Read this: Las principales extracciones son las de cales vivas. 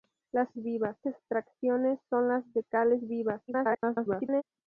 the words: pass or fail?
fail